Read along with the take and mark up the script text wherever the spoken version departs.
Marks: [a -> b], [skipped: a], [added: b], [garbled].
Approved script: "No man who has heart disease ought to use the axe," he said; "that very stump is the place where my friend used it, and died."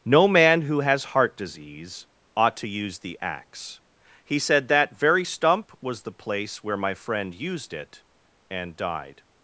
"No man who has heart disease ought to use the axe," he said; "that very stump [is -> was] the place where my friend used it, and died."